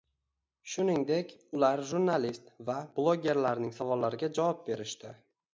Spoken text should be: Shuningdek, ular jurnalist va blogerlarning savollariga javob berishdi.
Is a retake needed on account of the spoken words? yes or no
no